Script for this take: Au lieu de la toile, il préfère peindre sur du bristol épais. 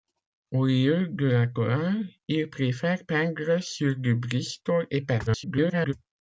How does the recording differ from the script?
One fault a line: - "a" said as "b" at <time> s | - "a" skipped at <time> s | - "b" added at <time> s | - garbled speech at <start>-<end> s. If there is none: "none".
- garbled speech at 5.3-5.9 s